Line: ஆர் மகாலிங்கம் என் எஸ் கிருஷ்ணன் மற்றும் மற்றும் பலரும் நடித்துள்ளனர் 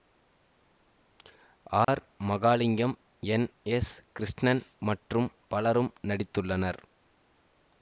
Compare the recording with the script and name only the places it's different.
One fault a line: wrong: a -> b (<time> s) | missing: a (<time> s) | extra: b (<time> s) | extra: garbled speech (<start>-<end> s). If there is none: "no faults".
missing: மற்றும் (5.3 s)